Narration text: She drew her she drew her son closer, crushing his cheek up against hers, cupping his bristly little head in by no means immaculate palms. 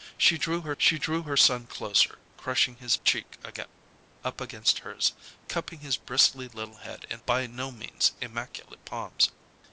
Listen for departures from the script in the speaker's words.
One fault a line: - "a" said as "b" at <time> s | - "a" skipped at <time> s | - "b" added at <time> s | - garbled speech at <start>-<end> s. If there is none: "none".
none